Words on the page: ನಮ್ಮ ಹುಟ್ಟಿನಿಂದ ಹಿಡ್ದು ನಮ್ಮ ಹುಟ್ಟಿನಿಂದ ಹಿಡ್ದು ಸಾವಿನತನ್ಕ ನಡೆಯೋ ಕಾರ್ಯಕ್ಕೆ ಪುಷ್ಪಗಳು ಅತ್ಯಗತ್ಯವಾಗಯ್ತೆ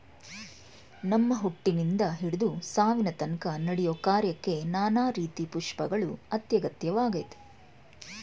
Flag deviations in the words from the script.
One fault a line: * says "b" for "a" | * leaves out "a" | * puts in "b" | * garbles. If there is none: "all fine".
* leaves out "ನಮ್ಮ ಹುಟ್ಟಿನಿಂದ ಹಿಡ್ದು"
* puts in "ನಾನಾ ರೀತಿ"